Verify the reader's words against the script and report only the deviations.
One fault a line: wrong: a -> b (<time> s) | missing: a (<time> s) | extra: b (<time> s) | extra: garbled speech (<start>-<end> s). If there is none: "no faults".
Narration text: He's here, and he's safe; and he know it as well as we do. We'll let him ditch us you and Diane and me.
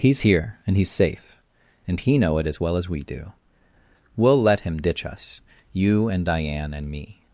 no faults